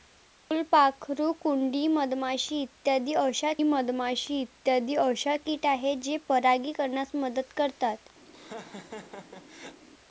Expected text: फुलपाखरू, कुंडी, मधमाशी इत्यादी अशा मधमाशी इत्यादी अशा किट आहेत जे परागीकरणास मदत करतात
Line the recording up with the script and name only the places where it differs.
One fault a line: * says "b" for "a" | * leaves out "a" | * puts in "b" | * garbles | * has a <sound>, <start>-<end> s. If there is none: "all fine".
* has a laugh, 8.3-9.8 s